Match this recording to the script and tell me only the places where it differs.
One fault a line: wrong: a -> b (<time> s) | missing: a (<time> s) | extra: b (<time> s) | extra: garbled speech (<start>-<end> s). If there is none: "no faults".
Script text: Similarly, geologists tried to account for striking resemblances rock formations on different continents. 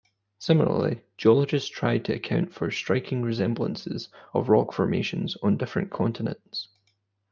extra: of (4.3 s)